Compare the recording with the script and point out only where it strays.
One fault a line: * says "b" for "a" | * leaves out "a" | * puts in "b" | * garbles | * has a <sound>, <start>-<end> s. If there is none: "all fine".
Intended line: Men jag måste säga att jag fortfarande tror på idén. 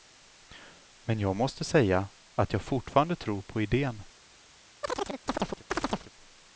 * has a chirp, 4.8-6.1 s